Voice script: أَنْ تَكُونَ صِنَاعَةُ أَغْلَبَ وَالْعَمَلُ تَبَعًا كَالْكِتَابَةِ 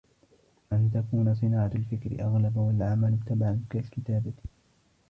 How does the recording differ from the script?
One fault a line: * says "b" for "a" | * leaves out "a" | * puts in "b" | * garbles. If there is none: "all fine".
* puts in "الْفِكْرِ"